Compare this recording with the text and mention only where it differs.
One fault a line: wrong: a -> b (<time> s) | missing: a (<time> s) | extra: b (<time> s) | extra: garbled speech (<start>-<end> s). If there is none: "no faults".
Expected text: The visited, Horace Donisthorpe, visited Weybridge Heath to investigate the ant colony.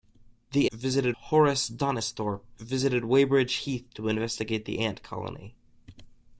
no faults